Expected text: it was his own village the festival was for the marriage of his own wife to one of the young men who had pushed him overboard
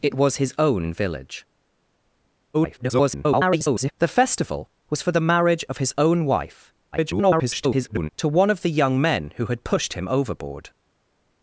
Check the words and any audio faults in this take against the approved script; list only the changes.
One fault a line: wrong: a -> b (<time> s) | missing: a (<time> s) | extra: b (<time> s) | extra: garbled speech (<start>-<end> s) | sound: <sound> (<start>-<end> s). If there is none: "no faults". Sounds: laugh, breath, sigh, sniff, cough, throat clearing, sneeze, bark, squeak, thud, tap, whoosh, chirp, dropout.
extra: garbled speech (2.5-3.9 s)
extra: garbled speech (6.9-8.1 s)